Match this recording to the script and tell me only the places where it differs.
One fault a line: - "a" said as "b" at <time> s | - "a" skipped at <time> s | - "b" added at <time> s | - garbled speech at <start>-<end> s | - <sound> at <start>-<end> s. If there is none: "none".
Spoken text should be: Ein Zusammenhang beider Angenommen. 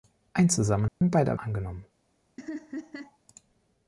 - dropout at 0.9-1.0 s
- laugh at 2.4-3.2 s